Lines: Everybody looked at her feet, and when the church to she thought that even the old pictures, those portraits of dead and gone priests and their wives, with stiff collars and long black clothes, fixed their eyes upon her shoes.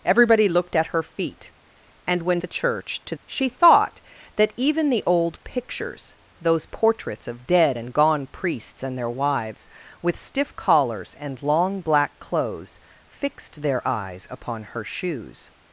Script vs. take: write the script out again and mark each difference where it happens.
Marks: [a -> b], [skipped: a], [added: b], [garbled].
Everybody looked at her feet, and when the church to she thought that even the old pictures, those portraits of dead and gone priests and their wives, with stiff collars and long black clothes, fixed their eyes upon her shoes.